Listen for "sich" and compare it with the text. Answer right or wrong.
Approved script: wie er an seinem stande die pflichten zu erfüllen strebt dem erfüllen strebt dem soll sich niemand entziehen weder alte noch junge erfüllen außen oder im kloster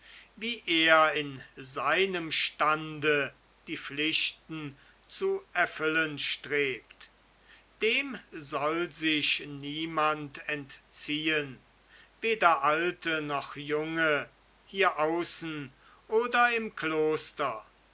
right